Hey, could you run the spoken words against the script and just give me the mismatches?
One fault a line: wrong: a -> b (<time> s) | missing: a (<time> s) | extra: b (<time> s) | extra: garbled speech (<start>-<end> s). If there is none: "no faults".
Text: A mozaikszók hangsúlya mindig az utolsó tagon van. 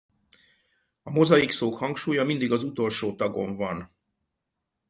no faults